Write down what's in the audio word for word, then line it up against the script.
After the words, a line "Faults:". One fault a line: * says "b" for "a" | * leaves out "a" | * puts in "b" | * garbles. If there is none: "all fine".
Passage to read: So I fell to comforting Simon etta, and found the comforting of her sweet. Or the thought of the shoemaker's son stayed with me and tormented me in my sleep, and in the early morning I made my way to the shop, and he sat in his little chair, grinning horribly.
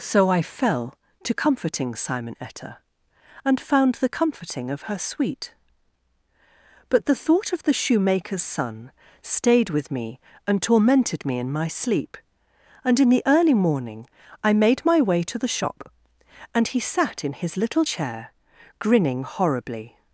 So I fell to comforting Simon etta, and found the comforting of her sweet. But the thought of the shoemaker's son stayed with me and tormented me in my sleep, and in the early morning I made my way to the shop, and he sat in his little chair, grinning horribly.
Faults:
* says "But" for "Or"